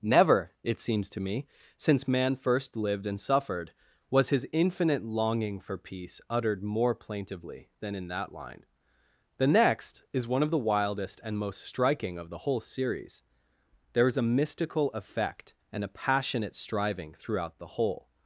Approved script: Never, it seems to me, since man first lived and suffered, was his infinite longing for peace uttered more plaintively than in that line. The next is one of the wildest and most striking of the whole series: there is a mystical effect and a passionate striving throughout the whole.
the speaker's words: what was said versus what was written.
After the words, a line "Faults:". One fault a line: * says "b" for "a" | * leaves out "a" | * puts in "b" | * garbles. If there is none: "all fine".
Never, it seems to me, since man first lived and suffered, was his infinite longing for peace uttered more plaintively than in that line. The next is one of the wildest and most striking of the whole series: there is a mystical effect and a passionate striving throughout the whole.
Faults:
all fine